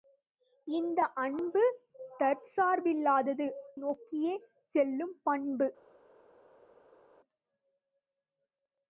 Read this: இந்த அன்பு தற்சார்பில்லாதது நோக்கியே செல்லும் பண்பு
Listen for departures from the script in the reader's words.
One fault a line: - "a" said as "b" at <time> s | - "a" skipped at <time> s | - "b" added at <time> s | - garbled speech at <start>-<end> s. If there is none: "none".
none